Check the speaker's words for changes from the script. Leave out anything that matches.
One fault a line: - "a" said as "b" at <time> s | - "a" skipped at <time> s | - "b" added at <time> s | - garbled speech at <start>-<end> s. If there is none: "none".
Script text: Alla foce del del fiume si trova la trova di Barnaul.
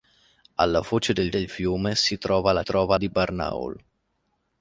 none